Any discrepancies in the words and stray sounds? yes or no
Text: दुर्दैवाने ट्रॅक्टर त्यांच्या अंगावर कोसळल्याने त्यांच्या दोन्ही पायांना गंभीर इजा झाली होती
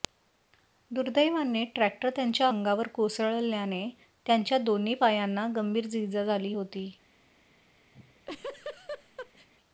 yes